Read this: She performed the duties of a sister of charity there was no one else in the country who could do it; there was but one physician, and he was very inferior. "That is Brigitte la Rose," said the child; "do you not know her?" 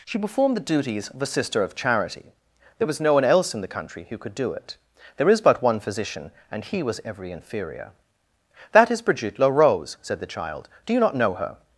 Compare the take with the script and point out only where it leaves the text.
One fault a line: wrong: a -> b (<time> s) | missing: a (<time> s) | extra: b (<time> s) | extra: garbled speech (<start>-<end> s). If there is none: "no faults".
wrong: was -> is (5.3 s)
wrong: very -> every (7.0 s)